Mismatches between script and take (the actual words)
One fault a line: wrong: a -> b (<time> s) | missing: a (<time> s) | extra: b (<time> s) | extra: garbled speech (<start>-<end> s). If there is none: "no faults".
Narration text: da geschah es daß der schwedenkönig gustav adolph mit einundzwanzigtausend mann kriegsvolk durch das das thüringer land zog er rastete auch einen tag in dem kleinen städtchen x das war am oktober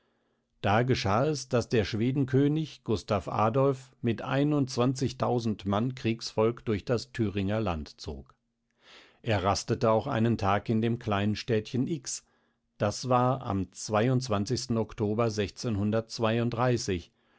missing: das (7.1 s)